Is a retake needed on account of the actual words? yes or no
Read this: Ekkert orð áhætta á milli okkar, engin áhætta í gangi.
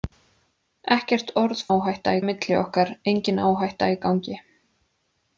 no